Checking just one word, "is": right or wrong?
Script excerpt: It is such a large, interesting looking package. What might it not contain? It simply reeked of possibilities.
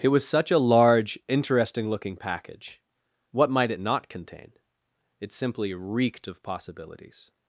wrong